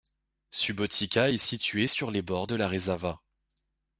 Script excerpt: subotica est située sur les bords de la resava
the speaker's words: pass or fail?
pass